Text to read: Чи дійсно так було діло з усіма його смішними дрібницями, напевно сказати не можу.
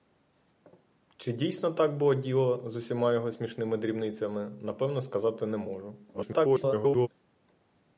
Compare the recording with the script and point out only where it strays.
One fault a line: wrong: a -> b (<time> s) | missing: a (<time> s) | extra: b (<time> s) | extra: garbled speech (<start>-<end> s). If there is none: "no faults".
extra: garbled speech (6.1-7.1 s)